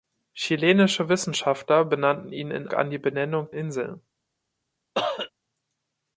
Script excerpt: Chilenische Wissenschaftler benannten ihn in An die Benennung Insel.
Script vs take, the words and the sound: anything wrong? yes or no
yes